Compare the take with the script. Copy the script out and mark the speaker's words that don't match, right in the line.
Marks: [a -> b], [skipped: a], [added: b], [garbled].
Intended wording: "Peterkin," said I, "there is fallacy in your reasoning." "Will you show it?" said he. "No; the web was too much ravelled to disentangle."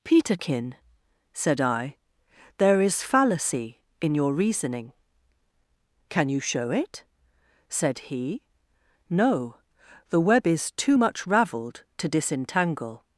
"Peterkin," said I, "there is fallacy in your reasoning." ["Will -> Can] you show it?" said he. "No; the web [was -> is] too much ravelled to disentangle."